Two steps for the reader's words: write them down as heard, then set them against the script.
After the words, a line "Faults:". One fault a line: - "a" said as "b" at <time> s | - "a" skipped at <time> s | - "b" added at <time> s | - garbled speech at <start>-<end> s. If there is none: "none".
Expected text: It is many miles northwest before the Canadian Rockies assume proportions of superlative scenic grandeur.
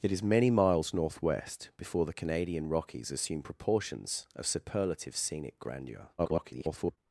It is many miles northwest before the Canadian Rockies assume proportions of superlative scenic grandeur. [garbled]
Faults:
- garbled speech at 6.2-7.0 s